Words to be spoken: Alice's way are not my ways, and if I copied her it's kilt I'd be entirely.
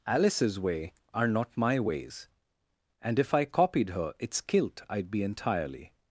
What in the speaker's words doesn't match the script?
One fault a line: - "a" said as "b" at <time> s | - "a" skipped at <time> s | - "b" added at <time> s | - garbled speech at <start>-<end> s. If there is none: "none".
none